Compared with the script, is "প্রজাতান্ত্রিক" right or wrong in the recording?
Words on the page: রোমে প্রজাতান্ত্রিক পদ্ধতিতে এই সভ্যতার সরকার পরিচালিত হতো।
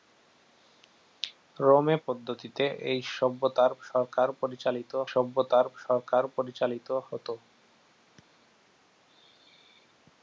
wrong